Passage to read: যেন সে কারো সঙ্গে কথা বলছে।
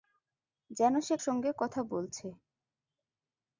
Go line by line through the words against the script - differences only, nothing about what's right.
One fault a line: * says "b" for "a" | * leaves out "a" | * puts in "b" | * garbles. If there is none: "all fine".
* leaves out "কারো"